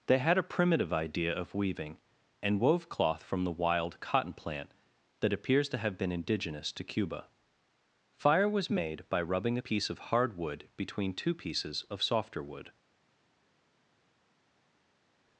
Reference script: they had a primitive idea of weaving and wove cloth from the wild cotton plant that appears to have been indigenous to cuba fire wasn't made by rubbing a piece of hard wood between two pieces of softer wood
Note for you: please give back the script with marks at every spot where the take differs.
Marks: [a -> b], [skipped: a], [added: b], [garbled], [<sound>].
they had a primitive idea of weaving and wove cloth from the wild cotton plant that appears to have been indigenous to cuba fire [wasn't -> was] made by rubbing a piece of hard wood between two pieces of softer wood